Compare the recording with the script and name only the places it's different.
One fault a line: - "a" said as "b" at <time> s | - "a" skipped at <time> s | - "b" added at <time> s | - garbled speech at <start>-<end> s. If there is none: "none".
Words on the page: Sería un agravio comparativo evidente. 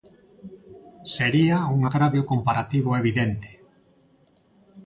none